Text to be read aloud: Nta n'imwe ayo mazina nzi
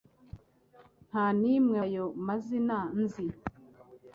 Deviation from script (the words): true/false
false